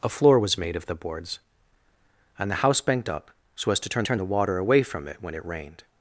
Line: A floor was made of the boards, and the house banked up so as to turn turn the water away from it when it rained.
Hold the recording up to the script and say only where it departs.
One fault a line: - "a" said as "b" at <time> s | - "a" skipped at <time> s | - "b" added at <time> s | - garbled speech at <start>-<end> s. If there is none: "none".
none